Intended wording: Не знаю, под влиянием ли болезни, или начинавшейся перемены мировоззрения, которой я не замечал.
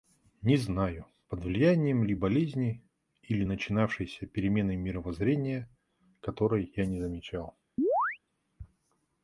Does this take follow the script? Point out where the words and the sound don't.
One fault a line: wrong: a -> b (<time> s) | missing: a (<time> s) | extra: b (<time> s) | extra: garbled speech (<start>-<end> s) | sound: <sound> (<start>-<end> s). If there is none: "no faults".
sound: chirp (7.8-8.2 s)